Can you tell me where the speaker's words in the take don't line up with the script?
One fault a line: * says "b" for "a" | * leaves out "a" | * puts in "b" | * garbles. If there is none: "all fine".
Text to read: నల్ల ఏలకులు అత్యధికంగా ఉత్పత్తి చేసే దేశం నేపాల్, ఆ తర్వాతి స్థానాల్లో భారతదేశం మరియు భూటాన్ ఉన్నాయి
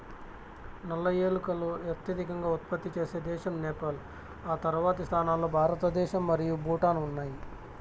all fine